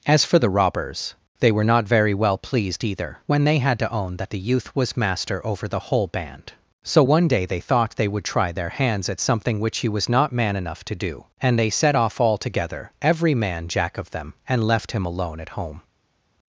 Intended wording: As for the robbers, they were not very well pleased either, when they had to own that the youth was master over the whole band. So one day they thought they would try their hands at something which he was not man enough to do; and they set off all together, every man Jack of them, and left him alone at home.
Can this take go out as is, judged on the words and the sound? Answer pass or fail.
pass